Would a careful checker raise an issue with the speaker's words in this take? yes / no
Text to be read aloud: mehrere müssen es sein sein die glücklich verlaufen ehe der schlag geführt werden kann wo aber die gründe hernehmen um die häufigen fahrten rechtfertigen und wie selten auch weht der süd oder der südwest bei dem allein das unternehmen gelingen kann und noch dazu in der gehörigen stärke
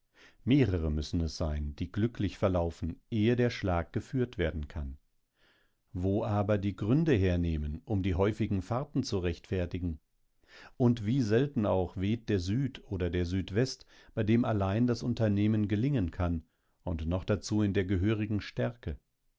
yes